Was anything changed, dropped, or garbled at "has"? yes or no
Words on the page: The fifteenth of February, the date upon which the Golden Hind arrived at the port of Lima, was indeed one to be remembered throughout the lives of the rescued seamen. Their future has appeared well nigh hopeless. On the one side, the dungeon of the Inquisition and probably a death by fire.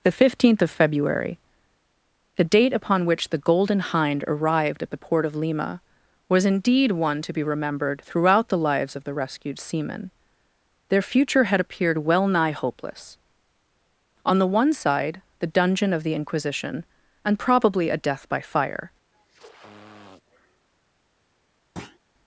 yes